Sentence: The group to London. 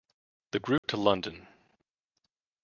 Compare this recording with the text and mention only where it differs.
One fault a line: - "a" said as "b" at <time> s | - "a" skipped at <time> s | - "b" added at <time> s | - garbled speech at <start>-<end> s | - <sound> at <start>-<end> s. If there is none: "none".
- dropout at 0.8-0.8 s